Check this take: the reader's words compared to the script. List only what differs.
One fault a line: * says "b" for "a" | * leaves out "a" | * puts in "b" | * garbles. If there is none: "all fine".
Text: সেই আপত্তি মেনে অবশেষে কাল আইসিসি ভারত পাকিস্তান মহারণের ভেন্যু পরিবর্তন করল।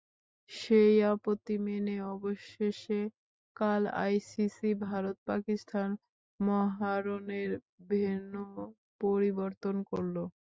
all fine